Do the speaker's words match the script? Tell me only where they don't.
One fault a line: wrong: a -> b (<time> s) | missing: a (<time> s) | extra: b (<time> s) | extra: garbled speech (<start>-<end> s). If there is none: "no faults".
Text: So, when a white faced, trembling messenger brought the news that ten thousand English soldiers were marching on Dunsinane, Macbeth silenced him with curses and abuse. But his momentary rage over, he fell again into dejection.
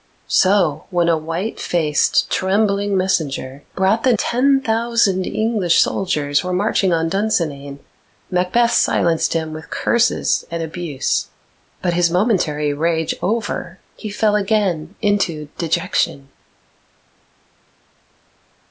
missing: news that (4.1 s)